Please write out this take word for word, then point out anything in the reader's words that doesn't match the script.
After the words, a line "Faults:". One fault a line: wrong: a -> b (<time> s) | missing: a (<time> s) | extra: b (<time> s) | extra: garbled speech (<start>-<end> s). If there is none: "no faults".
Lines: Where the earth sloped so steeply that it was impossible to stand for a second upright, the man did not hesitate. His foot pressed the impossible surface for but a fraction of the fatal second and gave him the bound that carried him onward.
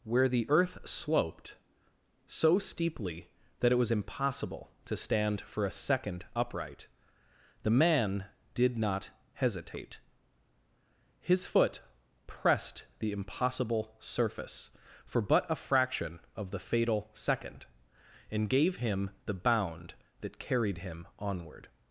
Where the earth sloped so steeply that it was impossible to stand for a second upright, the man did not hesitate. His foot pressed the impossible surface for but a fraction of the fatal second and gave him the bound that carried him onward.
Faults:
no faults